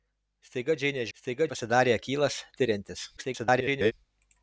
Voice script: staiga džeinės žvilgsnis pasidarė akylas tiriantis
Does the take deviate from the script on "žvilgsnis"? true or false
true